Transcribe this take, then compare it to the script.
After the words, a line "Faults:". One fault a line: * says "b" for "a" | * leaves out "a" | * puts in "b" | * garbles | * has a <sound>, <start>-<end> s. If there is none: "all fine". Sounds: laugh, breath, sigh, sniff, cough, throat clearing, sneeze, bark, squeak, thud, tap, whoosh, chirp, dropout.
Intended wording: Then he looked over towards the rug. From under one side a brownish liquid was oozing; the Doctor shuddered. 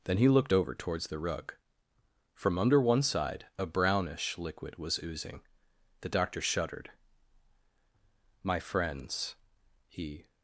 Then he looked over towards the rug. From under one side a brownish liquid was oozing; the Doctor shuddered. "My friends," he
Faults:
* puts in "My friends he"